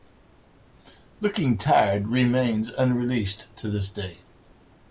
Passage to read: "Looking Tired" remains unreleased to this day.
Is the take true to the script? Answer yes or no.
yes